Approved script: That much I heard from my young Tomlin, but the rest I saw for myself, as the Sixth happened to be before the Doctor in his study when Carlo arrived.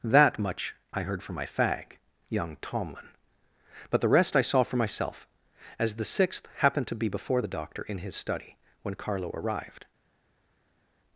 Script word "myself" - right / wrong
right